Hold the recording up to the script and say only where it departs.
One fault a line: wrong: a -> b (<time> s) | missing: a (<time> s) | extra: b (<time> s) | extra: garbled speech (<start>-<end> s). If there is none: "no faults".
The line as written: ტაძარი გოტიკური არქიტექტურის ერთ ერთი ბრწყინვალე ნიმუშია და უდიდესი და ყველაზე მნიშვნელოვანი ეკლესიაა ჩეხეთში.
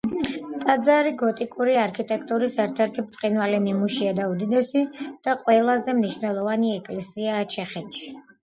no faults